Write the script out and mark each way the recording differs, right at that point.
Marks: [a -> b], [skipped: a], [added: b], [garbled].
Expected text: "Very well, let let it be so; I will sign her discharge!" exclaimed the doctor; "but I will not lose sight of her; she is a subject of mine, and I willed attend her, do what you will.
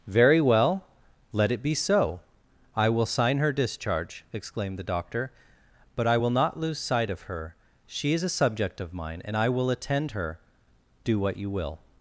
"Very well, let [skipped: let] it be so; I will sign her discharge!" exclaimed the doctor; "but I will not lose sight of her; she is a subject of mine, and I [willed -> will] attend her, do what you will.